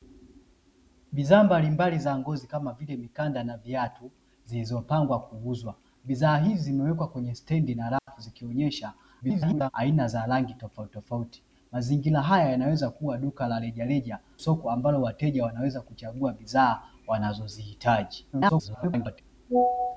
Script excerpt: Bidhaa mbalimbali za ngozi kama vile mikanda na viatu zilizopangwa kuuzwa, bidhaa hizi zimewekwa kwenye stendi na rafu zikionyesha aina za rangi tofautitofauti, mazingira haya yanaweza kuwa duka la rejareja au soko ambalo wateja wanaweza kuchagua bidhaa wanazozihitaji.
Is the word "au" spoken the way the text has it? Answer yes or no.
no